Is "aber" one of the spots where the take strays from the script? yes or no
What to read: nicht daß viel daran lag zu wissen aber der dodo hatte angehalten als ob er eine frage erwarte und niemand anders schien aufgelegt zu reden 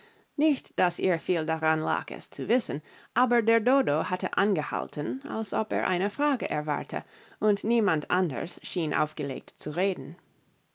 no